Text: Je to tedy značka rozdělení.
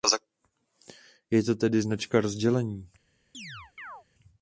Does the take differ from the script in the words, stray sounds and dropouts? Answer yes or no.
yes